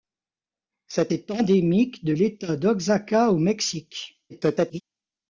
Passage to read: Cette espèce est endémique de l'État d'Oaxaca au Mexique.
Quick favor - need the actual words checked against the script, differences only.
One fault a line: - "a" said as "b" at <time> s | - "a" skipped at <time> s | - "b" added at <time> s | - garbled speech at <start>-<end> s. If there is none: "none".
- "espèce" skipped at 1.1 s
- garbled speech at 4.3-4.8 s